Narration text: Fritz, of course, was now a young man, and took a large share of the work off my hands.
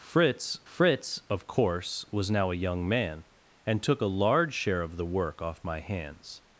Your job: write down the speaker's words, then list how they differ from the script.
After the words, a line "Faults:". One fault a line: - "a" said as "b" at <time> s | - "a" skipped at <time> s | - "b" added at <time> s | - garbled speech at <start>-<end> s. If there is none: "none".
Fritz fritz, of course, was now a young man, and took a large share of the work off my hands.
Faults:
- "fritz" added at 0.7 s